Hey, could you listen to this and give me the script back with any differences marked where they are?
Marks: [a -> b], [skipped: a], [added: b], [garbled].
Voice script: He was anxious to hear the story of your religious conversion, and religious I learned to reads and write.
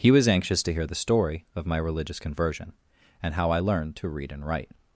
He was anxious to hear the story of [your -> my] religious conversion, and [religious -> how] I learned to [reads -> read] and write.